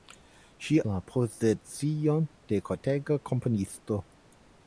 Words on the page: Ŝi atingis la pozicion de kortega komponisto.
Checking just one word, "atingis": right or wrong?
wrong